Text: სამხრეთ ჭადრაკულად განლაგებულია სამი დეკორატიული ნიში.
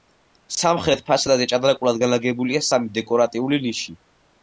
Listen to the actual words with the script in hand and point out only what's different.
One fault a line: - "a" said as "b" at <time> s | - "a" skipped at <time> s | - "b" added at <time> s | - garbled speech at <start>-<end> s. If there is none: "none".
- "ფასადზე" added at 1.1 s